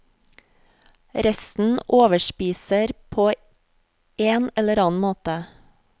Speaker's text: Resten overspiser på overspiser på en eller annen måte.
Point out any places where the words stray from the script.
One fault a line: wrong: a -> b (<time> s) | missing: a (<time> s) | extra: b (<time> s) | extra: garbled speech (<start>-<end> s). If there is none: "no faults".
missing: overspiser på (3.3 s)